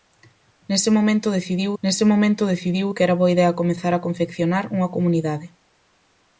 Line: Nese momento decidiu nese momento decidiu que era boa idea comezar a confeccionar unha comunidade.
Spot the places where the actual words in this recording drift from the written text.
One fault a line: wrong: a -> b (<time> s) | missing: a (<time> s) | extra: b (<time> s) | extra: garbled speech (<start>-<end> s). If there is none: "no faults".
no faults